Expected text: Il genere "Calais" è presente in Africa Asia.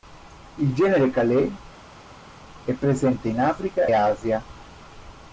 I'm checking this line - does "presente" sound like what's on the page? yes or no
yes